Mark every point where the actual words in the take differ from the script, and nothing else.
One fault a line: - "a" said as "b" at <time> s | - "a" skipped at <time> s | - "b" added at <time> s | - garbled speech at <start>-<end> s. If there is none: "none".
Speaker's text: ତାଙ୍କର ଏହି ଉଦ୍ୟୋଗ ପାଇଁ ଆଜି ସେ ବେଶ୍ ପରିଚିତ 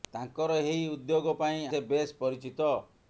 - "ଆଜି" skipped at 1.6 s